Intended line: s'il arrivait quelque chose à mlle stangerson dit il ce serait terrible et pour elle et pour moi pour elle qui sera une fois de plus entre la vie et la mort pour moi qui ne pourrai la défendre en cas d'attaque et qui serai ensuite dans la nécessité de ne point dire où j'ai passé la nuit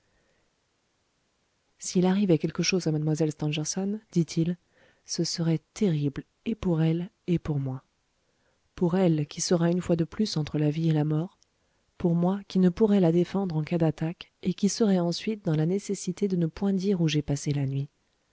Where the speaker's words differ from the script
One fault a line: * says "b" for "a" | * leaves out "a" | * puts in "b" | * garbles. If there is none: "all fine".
all fine